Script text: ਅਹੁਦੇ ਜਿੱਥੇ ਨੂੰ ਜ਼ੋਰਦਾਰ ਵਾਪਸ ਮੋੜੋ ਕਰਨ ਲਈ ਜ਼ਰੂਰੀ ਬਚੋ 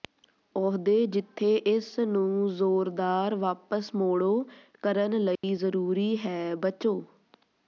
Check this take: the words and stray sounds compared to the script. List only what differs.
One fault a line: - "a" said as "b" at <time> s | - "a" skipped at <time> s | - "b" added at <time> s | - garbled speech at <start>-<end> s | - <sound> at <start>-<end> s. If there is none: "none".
- "ਇਸ" added at 1.7 s
- dropout at 5.4-5.4 s
- "ਹੈ" added at 6.3 s